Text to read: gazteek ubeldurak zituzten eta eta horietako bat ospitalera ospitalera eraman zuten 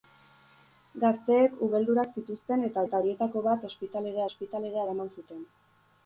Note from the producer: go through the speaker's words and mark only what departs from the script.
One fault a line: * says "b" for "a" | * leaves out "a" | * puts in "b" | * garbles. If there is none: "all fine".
all fine